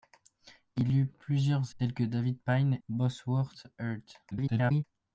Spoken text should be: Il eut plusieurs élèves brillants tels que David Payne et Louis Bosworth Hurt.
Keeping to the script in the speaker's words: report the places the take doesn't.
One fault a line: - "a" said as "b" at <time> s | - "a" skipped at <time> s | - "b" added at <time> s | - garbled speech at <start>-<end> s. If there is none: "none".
- "élèves brillants" skipped at 1.8 s
- "et Louis" skipped at 2.8 s
- garbled speech at 4.3-4.8 s